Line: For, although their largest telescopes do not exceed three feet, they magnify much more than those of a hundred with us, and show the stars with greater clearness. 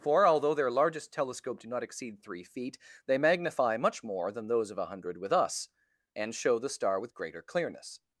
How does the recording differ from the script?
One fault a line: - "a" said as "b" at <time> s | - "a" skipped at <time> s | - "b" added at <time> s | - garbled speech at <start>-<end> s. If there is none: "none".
- "telescopes" said as "telescope" at 1.1 s
- "stars" said as "star" at 6.7 s